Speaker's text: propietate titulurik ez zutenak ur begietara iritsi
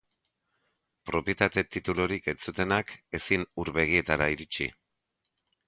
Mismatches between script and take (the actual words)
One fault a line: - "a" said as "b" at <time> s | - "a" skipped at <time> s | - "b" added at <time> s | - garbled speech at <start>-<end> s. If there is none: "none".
- "ezin" added at 3.2 s